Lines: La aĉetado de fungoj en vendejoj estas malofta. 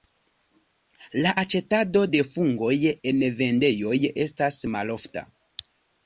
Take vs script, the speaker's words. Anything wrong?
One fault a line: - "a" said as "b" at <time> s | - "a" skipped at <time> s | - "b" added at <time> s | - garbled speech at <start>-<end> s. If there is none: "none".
none